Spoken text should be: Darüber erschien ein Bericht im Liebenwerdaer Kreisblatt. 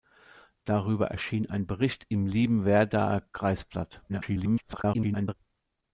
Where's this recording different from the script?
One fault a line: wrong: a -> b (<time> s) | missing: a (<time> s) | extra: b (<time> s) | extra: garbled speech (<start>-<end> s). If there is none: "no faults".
extra: garbled speech (4.1-5.3 s)